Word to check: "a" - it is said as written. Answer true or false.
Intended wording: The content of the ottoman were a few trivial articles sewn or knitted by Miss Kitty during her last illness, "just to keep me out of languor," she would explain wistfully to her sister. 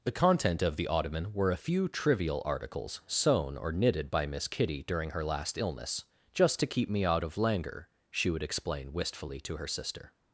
true